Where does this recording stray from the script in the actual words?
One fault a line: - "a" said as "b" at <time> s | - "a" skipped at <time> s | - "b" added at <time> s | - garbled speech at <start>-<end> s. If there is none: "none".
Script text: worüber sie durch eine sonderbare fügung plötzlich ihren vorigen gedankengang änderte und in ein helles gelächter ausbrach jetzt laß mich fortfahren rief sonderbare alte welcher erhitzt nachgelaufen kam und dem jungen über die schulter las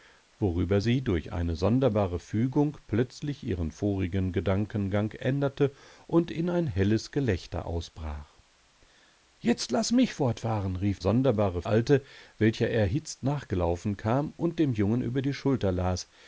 none